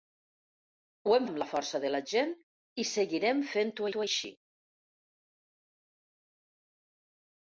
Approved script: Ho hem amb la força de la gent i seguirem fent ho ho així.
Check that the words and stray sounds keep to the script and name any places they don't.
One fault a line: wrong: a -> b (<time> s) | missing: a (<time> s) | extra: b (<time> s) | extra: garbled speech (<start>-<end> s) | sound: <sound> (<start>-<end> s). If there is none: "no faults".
no faults